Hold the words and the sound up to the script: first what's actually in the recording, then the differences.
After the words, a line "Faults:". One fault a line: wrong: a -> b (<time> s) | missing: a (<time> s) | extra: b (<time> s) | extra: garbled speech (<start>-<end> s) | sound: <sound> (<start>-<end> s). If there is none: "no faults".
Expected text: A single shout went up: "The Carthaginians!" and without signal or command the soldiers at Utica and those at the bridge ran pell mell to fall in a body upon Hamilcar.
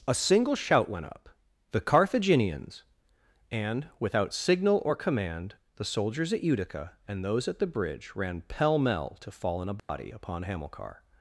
A single shout went up: "The Carthaginians!" and without signal or command the soldiers at Utica and those at the bridge ran pell mell to fall in a body upon Hamilcar.
Faults:
sound: dropout (9.8-9.9 s)